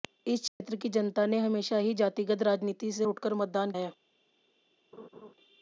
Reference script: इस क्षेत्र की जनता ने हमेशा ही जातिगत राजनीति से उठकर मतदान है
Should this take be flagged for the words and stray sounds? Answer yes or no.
yes